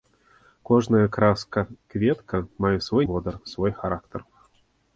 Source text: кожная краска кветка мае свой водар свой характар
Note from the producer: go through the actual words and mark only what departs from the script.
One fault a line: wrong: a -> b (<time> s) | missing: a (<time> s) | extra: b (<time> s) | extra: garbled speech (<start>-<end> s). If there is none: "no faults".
no faults